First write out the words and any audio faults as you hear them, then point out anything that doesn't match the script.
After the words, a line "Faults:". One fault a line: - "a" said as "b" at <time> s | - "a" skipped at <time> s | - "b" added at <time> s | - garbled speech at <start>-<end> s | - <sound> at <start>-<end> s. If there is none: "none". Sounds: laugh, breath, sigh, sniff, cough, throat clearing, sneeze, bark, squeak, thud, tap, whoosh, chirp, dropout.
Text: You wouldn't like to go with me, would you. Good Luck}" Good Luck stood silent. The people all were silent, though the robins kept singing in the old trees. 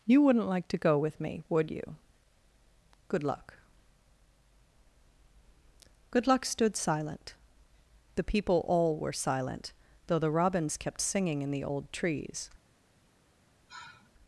You wouldn't like to go with me, would you. Good Luck}" Good Luck stood silent. The people all were silent, though the robins kept singing in the old trees.
Faults:
- sigh at 13.7-14.1 s